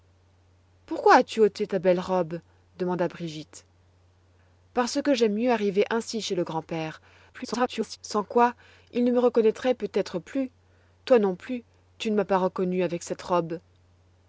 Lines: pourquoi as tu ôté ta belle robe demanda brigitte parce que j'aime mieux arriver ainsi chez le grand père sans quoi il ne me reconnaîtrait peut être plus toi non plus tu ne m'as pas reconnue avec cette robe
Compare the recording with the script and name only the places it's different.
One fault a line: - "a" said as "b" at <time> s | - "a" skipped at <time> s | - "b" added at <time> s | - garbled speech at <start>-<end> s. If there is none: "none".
- garbled speech at 7.3-8.0 s